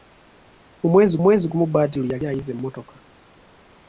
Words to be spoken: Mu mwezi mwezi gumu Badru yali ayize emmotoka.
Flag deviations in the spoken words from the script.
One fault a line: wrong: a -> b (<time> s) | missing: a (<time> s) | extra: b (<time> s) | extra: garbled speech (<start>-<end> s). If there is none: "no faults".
no faults